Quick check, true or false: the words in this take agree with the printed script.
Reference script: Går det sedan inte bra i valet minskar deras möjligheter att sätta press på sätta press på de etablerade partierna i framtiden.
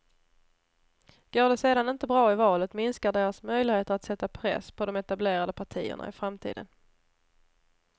false